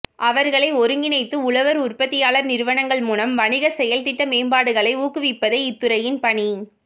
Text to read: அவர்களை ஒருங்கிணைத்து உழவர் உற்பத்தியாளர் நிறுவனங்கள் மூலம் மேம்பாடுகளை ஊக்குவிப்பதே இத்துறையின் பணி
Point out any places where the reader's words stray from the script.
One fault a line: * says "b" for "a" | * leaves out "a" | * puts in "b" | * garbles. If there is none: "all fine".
* puts in "வணிக செயல்திட்ட"